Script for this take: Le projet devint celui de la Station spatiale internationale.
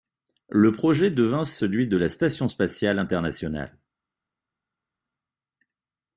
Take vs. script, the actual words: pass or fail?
pass